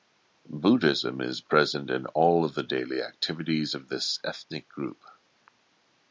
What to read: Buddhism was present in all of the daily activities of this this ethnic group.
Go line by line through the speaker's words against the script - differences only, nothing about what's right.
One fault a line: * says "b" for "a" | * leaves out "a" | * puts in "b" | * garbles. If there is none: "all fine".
* says "is" for "was"
* leaves out "this"